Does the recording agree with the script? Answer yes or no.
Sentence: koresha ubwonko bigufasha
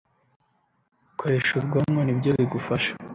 no